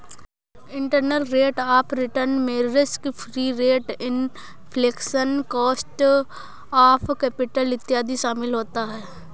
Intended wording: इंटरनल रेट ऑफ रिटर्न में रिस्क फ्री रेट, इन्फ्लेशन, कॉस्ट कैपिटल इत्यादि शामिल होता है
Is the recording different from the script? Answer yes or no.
yes